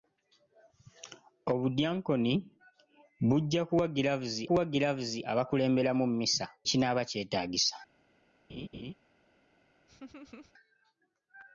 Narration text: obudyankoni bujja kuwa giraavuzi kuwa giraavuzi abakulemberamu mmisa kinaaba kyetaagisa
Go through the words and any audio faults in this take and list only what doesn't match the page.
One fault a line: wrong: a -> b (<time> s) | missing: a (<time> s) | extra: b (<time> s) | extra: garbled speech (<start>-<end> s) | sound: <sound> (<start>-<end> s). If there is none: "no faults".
sound: laugh (8.5-8.9 s)
sound: laugh (9.9-10.5 s)